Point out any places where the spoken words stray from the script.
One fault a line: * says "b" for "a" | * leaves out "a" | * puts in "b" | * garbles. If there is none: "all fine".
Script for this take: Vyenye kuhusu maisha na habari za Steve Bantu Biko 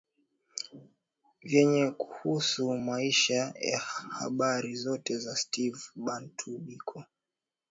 * puts in "zote"